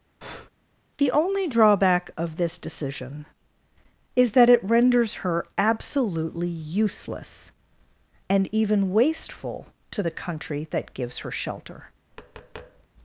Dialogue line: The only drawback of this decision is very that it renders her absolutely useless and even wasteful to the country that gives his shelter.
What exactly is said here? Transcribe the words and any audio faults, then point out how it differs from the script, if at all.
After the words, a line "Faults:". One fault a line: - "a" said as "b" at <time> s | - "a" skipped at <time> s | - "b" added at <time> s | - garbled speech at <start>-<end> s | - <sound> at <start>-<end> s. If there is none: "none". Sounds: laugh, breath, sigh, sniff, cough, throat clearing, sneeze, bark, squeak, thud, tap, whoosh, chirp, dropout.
The only drawback of this decision is that it renders her absolutely useless and even wasteful to the country that gives her shelter.
Faults:
- breath at 0.2-0.5 s
- "very" skipped at 4.3 s
- "his" said as "her" at 11.2 s
- tap at 12.1-12.9 s